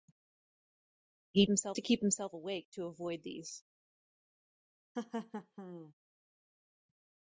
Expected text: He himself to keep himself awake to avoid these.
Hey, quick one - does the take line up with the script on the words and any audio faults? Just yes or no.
no